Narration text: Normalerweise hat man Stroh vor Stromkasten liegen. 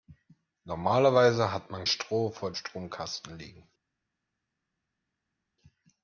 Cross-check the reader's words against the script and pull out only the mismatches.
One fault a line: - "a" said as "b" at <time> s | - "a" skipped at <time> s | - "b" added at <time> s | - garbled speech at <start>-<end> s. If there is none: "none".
none